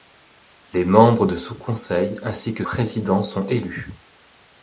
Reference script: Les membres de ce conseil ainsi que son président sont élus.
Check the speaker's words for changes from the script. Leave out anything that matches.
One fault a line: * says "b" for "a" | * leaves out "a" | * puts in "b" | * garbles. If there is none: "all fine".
* leaves out "son"